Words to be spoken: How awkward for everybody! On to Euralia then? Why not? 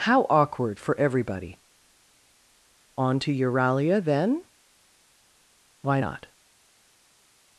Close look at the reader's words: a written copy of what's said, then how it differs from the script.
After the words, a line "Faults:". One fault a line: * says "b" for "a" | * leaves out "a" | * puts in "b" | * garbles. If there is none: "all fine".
How awkward for everybody! On to Euralia then? Why not?
Faults:
all fine